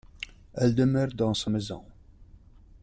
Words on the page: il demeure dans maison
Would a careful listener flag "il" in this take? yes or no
yes